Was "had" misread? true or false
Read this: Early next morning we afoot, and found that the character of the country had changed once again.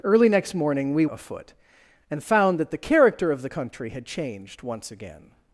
false